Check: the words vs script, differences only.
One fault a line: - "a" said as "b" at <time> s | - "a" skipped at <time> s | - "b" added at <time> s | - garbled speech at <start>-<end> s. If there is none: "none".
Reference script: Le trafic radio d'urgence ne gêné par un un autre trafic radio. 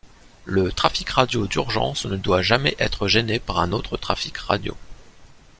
- "doit jamais être" added at 2.1 s
- "un" skipped at 3.7 s